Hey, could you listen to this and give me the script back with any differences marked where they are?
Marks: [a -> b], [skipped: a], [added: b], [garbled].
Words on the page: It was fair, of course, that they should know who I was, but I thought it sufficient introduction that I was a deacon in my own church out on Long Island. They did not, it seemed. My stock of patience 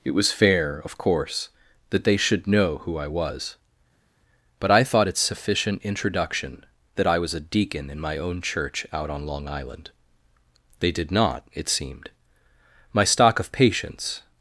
It was fair, of course, that they should know who I was, but I thought it sufficient introduction that I was a deacon in my own church out on Long Island. They did not, it seemed. My stock of patience